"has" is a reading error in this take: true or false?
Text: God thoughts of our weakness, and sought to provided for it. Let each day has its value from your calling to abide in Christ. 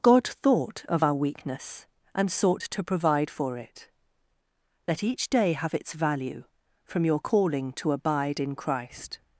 true